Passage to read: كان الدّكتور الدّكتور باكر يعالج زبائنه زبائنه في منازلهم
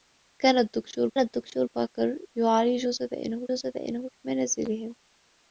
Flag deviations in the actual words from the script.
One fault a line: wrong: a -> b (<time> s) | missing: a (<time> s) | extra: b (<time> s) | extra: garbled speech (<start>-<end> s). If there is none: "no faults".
no faults